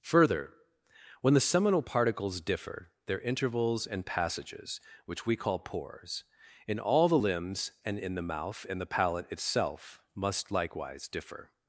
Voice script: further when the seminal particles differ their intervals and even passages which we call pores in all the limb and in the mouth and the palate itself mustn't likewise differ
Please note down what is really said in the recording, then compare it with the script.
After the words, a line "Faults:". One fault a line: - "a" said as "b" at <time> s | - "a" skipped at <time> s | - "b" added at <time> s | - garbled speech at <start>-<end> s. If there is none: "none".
further when the seminal particles differ their intervals and passages which we call pores in all the limbs and in the mouth and the palate itself must likewise differ
Faults:
- "even" skipped at 4.0 s
- "limb" said as "limbs" at 7.2 s
- "mustn't" said as "must" at 10.1 s